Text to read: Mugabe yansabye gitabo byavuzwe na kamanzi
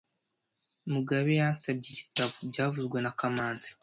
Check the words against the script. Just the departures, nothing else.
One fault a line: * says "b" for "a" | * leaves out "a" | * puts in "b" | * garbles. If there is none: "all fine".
all fine